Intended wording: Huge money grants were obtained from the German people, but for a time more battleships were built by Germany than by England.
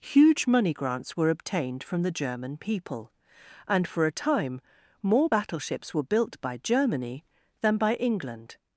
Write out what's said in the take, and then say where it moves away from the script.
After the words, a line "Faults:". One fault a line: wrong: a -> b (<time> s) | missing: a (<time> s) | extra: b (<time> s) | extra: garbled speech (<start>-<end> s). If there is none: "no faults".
Huge money grants were obtained from the German people, and for a time more battleships were built by Germany than by England.
Faults:
wrong: but -> and (3.7 s)